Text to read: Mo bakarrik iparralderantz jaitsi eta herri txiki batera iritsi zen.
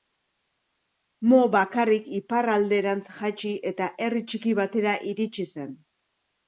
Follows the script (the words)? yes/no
yes